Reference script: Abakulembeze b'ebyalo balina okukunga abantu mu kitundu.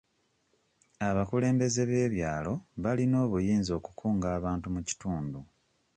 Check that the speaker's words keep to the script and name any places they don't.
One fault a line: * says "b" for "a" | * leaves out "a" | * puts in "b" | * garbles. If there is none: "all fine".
* puts in "obuyinza"